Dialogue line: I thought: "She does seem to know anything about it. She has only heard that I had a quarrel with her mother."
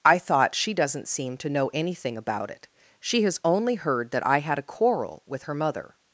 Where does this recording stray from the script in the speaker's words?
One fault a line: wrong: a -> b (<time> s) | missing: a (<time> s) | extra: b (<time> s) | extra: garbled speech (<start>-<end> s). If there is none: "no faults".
wrong: does -> doesn't (0.7 s)